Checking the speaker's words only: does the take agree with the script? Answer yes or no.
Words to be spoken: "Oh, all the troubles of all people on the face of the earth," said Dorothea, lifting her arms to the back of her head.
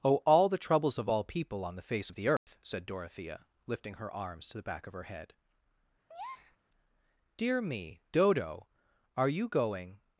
no